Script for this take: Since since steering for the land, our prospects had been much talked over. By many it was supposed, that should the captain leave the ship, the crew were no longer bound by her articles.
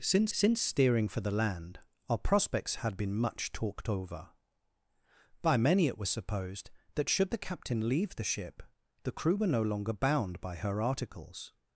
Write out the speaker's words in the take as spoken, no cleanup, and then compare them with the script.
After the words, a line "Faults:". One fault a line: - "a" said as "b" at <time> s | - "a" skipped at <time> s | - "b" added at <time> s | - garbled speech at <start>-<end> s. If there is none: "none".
Since since steering for the land, our prospects had been much talked over. By many it was supposed, that should the captain leave the ship, the crew were no longer bound by her articles.
Faults:
none